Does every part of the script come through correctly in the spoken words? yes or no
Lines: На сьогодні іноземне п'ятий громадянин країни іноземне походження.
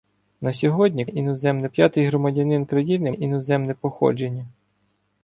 yes